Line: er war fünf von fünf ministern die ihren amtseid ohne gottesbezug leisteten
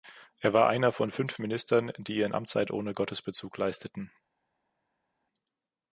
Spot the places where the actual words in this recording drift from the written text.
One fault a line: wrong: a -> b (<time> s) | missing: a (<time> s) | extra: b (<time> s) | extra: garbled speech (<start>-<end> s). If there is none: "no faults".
wrong: fünf -> einer (0.7 s)